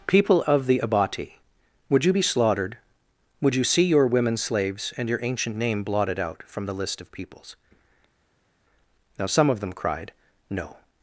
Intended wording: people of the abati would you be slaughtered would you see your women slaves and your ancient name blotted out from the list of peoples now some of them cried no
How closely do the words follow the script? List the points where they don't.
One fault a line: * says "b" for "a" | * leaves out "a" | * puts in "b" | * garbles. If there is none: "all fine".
all fine